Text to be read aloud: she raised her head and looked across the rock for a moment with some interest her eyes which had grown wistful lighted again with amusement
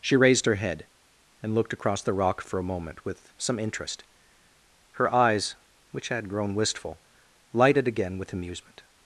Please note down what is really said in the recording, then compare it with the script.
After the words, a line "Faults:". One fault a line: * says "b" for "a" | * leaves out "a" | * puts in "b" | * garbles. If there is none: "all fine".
she raised her head and looked across the rock for a moment with some interest her eyes which had grown wistful lighted again with amusement
Faults:
all fine